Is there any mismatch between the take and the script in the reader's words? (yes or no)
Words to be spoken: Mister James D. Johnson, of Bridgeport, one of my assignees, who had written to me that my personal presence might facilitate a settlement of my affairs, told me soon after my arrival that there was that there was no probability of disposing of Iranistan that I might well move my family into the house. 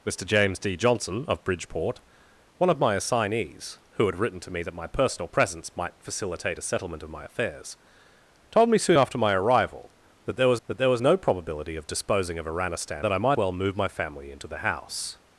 no